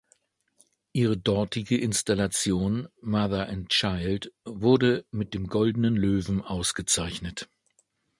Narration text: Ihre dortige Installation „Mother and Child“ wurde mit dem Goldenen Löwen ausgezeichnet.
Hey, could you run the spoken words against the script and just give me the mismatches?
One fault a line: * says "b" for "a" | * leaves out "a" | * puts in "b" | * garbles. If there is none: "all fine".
all fine